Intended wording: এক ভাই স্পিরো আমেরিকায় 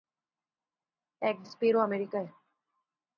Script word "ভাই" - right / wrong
wrong